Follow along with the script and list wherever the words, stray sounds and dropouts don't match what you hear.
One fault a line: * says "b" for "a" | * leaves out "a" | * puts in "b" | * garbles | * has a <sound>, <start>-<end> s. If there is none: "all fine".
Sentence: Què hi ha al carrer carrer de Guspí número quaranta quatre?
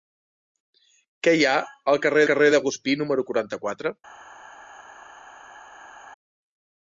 all fine